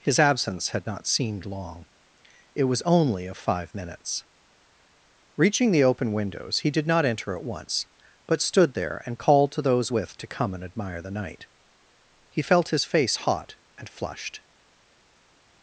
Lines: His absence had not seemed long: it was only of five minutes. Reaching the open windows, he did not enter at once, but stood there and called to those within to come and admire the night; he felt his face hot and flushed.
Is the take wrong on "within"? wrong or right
wrong